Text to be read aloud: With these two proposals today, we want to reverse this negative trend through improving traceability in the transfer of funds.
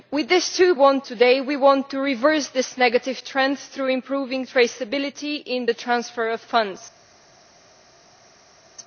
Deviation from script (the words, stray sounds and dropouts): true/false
true